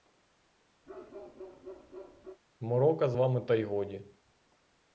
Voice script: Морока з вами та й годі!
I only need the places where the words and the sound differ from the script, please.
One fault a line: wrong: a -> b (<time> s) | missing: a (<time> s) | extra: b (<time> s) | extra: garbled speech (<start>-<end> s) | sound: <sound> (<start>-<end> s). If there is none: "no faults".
sound: bark (0.9-2.4 s)